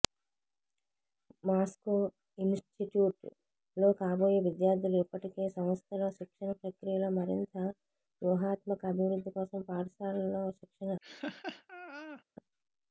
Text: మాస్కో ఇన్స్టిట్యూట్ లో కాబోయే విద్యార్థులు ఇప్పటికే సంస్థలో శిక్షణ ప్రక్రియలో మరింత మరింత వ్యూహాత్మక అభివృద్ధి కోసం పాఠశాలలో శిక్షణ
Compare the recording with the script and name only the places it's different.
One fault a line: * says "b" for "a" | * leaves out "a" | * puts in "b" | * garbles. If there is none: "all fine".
* leaves out "మరింత"